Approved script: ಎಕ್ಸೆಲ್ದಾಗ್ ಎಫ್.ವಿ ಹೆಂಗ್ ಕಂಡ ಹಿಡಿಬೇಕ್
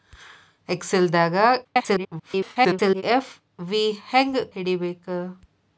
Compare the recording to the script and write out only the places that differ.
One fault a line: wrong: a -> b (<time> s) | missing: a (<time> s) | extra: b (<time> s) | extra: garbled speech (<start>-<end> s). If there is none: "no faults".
extra: garbled speech (1.6-3.0 s)
missing: ಕಂಡ (4.4 s)